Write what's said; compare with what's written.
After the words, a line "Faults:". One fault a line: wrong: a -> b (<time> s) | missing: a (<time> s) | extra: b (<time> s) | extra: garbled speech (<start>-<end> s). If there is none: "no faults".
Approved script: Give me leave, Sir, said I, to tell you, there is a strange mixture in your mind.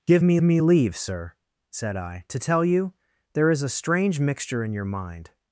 Give me me leave, Sir, said I, to tell you, there is a strange mixture in your mind.
Faults:
extra: me (0.4 s)